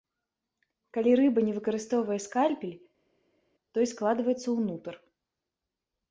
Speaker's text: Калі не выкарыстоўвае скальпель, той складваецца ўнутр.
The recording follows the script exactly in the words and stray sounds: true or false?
false